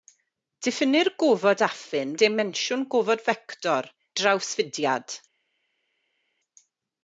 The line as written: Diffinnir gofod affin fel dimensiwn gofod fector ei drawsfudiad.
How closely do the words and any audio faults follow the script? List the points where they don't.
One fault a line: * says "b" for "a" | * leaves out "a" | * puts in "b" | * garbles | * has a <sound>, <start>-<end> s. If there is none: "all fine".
* leaves out "fel"
* leaves out "ei"